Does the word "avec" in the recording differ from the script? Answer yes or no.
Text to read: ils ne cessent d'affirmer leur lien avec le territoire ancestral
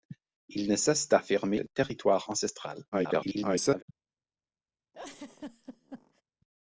yes